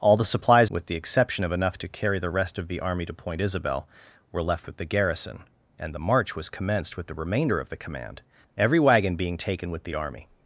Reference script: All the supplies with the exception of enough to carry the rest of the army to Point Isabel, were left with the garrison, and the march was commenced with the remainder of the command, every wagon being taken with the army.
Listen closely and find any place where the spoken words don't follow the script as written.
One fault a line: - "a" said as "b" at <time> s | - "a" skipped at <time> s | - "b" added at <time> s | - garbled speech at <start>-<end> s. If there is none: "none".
none